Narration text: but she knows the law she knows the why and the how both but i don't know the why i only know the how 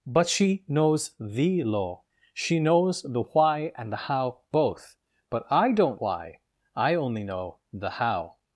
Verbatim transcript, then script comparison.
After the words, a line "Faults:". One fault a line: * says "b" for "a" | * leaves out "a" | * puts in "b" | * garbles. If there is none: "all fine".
but she knows the law she knows the why and the how both but i don't why i only know the how
Faults:
* leaves out "know the"